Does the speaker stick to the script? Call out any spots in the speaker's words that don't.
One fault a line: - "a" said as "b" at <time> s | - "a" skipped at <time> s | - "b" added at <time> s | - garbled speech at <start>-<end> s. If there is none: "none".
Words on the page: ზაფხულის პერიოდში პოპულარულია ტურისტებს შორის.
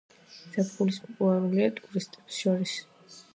- "პერიოდში" skipped at 0.9 s